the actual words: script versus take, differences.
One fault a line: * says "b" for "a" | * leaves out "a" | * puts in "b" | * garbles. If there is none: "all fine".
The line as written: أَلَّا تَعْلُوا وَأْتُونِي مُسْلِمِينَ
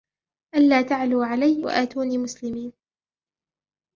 * puts in "عَلَيَّ"